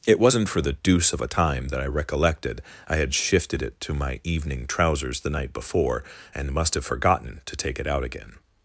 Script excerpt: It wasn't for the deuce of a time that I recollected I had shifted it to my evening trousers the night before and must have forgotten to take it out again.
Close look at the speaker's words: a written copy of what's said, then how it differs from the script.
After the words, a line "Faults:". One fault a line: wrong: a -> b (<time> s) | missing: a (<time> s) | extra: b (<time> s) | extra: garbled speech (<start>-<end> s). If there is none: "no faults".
It wasn't for the deuce of a time that I recollected I had shifted it to my evening trousers the night before and must have forgotten to take it out again.
Faults:
no faults